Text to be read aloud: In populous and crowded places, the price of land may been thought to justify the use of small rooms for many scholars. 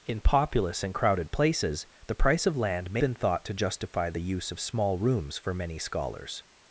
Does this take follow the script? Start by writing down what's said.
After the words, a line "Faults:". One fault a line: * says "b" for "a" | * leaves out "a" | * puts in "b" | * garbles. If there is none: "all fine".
In populous and crowded places, the price of land may been thought to justify the use of small rooms for many scholars.
Faults:
all fine